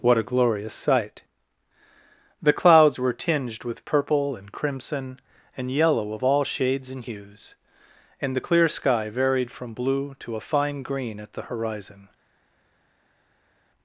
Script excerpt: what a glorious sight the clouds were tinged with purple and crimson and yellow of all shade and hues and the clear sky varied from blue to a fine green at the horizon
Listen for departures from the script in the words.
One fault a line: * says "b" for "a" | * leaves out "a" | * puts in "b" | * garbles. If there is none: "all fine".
* says "shades" for "shade"